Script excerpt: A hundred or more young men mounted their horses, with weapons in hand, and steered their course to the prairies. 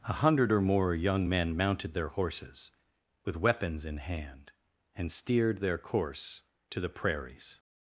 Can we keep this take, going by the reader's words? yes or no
yes